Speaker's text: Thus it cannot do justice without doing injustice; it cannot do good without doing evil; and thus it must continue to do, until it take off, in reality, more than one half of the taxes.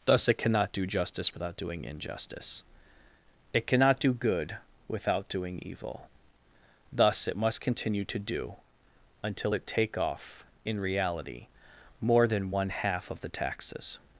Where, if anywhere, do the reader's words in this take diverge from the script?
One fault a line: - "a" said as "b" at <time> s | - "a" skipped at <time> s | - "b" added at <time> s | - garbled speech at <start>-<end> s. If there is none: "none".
- "and" skipped at 6.1 s